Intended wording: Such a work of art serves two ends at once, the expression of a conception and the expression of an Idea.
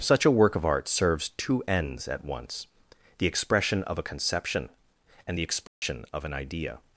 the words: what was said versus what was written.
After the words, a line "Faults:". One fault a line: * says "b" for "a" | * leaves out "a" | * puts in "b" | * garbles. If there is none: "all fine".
Such a work of art serves two ends at once, the expression of a conception and the expression of an Idea.
Faults:
all fine